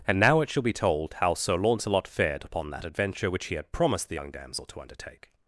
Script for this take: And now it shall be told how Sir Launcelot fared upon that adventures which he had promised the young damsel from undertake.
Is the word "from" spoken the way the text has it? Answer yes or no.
no